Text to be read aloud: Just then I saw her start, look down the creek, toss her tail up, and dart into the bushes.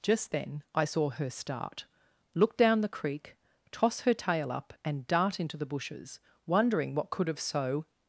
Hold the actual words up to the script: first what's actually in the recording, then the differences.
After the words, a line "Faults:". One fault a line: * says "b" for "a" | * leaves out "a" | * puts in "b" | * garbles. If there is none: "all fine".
Just then I saw her start, look down the creek, toss her tail up, and dart into the bushes. Wondering what could have so
Faults:
* puts in "Wondering what could have so"